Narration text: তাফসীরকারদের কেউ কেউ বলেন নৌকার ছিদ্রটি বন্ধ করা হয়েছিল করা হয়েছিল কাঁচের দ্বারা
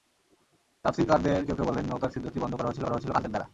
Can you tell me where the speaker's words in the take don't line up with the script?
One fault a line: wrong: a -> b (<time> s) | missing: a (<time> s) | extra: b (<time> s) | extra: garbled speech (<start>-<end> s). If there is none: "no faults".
no faults